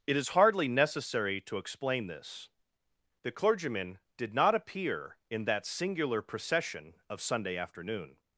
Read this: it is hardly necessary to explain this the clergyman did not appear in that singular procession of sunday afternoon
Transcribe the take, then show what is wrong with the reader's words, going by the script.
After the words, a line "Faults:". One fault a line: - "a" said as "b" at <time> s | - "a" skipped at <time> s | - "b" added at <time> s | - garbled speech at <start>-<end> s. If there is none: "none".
it is hardly necessary to explain this the clergyman did not appear in that singular procession of sunday afternoon
Faults:
none